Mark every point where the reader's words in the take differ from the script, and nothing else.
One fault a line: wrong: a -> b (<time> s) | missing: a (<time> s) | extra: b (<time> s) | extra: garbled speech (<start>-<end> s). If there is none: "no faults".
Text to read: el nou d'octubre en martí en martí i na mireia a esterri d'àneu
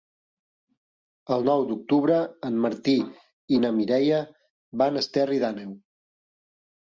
missing: en martí (2.9 s)
extra: van (4.8 s)